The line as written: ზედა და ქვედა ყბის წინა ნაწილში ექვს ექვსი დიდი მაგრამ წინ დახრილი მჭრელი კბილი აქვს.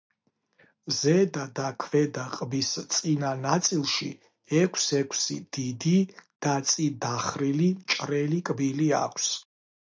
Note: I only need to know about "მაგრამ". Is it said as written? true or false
false